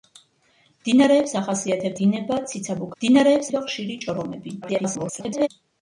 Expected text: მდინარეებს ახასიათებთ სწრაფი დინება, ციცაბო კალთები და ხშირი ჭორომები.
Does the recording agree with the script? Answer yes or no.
no